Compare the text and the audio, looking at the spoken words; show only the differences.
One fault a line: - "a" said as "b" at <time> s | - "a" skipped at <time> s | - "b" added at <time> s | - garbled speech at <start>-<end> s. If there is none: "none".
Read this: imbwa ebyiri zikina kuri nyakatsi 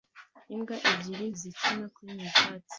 none